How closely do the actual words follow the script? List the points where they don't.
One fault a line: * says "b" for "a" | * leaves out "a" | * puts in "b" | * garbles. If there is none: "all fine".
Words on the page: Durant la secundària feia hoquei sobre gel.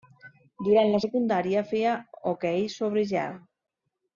all fine